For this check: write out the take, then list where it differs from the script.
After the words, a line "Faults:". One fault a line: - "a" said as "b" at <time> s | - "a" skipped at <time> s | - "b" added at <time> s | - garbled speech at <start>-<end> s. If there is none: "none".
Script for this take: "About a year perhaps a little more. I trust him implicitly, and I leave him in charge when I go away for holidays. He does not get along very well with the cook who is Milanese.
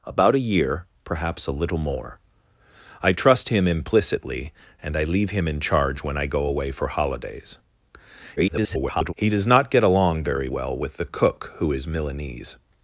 "About a year perhaps a little more. I trust him implicitly, and I leave him in charge when I go away for holidays. [garbled] He does not get along very well with the cook who is Milanese.
Faults:
- garbled speech at 8.4-9.1 s